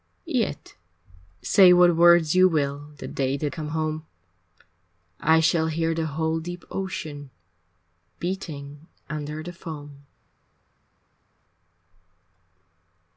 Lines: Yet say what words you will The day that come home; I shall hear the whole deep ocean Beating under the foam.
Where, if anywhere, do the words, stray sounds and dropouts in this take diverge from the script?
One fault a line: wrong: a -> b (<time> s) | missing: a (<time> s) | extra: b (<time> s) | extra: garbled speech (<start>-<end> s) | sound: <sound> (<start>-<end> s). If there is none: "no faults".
no faults